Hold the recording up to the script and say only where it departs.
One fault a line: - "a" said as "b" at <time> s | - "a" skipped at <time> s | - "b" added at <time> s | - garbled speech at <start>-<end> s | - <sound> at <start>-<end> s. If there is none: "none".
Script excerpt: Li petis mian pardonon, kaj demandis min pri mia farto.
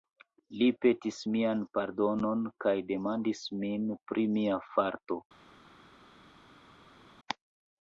none